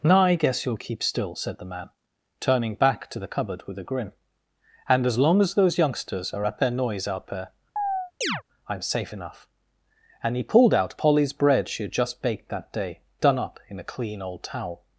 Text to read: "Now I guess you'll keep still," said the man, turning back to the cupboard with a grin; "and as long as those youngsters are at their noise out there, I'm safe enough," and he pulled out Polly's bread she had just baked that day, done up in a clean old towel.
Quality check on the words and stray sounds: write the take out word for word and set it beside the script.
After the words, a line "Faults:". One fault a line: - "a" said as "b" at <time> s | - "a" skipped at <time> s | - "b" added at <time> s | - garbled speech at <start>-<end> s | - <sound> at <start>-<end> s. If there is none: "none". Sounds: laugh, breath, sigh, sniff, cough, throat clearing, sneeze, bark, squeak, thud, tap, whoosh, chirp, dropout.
"Now I guess you'll keep still," said the man, turning back to the cupboard with a grin; "and as long as those youngsters are at their noise out there, I'm safe enough," and he pulled out Polly's bread she had just baked that day, done up in a clean old towel.
Faults:
- chirp at 7.8-8.4 s